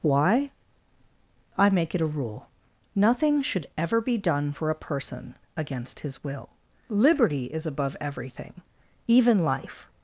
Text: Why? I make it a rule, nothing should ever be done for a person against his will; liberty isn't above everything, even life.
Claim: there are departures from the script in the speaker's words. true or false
true